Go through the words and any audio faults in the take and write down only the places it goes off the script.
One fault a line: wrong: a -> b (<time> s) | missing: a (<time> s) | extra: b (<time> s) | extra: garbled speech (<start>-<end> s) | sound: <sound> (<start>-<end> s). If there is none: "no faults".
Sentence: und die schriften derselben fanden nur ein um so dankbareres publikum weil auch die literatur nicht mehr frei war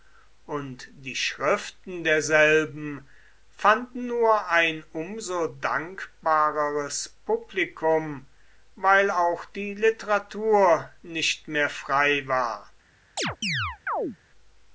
sound: chirp (13.2-14.2 s)